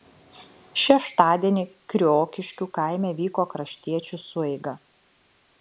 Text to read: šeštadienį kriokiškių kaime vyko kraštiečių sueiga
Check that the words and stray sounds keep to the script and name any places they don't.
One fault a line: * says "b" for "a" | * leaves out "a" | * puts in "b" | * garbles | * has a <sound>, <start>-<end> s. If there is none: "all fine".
all fine